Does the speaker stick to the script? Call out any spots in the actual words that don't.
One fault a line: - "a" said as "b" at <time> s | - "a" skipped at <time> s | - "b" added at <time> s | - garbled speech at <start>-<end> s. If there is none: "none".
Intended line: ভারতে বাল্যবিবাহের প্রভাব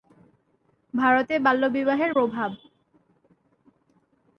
none